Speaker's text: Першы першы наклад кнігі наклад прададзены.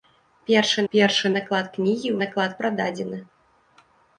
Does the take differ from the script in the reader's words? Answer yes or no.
no